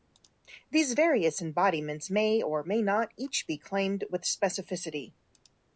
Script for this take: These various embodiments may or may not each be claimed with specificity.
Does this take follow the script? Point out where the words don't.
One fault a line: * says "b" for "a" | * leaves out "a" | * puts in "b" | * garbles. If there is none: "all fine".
all fine